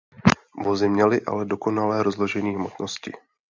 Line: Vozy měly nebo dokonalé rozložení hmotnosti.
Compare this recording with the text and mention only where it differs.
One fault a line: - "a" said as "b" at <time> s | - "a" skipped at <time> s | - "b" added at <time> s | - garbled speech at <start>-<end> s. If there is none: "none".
- "nebo" said as "ale" at 1.2 s